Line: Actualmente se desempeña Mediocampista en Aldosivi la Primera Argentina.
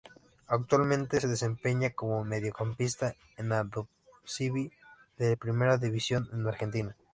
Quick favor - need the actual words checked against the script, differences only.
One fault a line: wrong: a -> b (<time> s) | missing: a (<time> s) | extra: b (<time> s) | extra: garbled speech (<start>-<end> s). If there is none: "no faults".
extra: como (1.9 s)
extra: de (5.2 s)
extra: División de (5.8 s)